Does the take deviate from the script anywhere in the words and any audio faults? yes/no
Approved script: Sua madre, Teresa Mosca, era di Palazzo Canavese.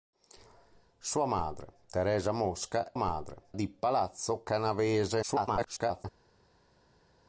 yes